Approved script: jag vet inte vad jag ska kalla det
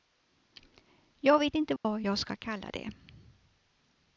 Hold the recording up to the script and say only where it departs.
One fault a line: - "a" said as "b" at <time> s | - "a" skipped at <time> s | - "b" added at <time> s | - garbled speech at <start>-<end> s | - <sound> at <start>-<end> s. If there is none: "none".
- dropout at 1.8-1.8 s